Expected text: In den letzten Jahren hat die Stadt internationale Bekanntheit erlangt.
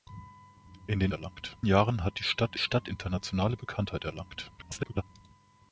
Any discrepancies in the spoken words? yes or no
yes